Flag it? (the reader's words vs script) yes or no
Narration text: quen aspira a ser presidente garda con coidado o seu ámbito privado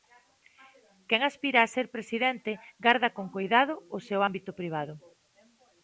no